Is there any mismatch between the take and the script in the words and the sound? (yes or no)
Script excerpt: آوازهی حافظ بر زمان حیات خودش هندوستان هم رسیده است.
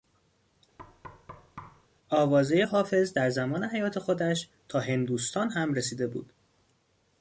yes